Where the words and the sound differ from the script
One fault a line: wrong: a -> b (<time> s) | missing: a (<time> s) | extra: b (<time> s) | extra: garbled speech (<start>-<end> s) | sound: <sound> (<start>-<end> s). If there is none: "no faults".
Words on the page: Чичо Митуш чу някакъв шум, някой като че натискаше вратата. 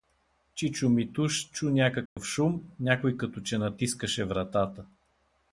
sound: dropout (2.1-2.2 s)